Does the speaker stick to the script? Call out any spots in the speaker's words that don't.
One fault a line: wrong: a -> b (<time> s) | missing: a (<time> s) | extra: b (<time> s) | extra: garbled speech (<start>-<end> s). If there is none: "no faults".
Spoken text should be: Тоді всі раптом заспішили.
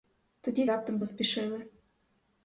missing: всі (0.7 s)